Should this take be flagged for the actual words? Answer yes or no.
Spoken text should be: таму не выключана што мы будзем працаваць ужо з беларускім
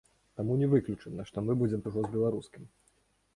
yes